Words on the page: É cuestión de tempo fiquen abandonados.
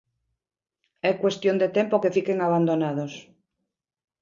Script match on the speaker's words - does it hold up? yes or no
no